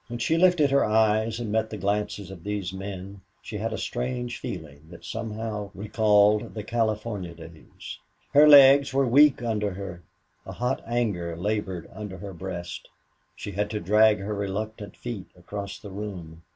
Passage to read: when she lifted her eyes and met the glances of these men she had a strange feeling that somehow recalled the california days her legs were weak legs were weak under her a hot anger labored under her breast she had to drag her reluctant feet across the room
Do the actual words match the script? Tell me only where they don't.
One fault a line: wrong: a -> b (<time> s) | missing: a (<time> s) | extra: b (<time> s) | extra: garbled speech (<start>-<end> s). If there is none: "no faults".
missing: legs were weak (9.4 s)